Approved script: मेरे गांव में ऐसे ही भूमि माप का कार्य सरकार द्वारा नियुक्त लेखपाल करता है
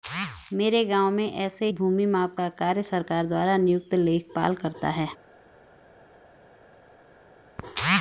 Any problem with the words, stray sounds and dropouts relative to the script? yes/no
yes